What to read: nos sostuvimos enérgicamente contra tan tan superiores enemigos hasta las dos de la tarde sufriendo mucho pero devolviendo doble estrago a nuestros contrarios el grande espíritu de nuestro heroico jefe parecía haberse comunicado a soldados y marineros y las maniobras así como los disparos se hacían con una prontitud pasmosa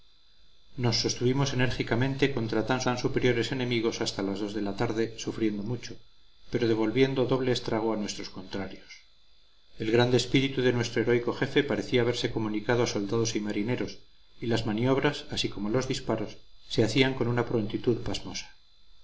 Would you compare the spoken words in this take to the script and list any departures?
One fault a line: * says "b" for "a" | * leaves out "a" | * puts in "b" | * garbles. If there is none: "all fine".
all fine